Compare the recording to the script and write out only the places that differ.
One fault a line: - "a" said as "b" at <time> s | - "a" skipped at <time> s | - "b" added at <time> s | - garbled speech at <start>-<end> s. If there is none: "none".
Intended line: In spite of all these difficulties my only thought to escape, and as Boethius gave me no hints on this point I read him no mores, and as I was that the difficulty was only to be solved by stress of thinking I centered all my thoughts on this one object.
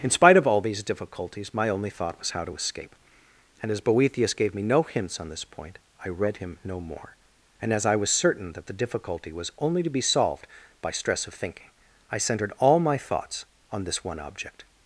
- "was how" added at 2.2 s
- "mores" said as "more" at 6.8 s
- "certain" added at 8.1 s